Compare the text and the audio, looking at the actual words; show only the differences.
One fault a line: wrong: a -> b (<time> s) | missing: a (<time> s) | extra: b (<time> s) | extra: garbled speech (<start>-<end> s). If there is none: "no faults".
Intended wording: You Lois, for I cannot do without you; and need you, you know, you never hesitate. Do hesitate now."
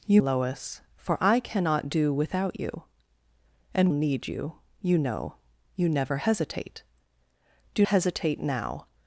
no faults